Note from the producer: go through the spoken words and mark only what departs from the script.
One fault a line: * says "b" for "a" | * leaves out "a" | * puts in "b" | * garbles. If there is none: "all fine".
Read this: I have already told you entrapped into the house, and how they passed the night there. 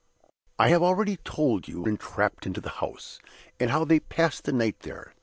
all fine